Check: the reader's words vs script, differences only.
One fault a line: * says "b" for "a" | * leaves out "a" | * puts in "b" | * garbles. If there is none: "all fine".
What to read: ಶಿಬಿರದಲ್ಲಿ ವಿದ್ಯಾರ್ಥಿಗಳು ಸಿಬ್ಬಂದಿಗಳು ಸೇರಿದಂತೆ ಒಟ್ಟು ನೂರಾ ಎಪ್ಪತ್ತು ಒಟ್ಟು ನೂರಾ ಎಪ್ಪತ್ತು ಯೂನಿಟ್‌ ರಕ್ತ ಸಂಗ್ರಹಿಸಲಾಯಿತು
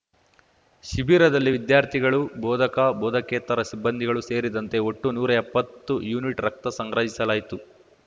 * puts in "ಬೋಧಕ ಬೋಧಕೇತರ"
* leaves out "ಒಟ್ಟು ನೂರಾ ಎಪ್ಪತ್ತು"